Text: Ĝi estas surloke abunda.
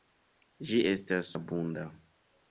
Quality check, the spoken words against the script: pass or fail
fail